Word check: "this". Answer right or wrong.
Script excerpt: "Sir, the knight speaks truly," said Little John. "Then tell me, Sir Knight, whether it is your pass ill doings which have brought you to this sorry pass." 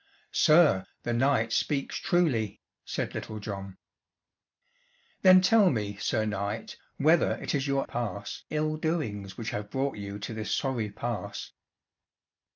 right